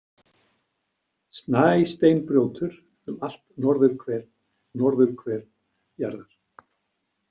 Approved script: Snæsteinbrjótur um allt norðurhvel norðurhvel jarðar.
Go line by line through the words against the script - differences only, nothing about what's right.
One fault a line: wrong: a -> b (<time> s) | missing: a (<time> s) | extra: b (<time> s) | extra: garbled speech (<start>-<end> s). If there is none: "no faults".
no faults